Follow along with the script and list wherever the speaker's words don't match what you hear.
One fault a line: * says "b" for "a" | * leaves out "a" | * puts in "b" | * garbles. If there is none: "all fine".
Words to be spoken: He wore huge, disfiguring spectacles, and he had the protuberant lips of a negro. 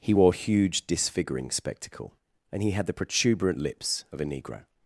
* says "spectacle" for "spectacles"